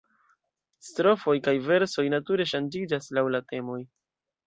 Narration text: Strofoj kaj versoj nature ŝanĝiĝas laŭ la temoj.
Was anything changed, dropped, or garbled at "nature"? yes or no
no